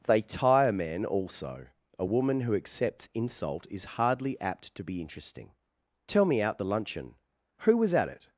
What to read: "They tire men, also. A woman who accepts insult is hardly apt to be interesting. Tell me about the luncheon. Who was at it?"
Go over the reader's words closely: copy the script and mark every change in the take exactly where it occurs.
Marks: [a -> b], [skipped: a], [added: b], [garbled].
"They tire men, also. A woman who accepts insult is hardly apt to be interesting. Tell me [about -> out] the luncheon. Who was at it?"